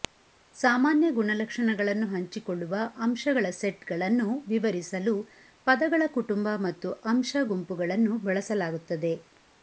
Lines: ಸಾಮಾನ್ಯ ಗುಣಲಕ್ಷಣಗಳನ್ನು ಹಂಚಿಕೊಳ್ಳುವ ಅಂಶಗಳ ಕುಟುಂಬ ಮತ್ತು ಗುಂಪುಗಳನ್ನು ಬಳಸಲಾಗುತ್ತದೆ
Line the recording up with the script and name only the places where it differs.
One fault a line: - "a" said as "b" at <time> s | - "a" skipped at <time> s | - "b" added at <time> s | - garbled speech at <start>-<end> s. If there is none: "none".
- "ಸೆಟ್ಗಳನ್ನು ವಿವರಿಸಲು ಪದಗಳ" added at 3.5 s
- "ಅಂಶ" added at 7.0 s